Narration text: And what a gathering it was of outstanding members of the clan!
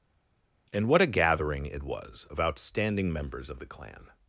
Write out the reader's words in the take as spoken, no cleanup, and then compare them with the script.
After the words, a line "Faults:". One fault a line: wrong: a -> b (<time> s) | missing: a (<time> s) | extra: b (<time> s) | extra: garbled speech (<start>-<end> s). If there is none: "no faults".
And what a gathering it was of outstanding members of the clan!
Faults:
no faults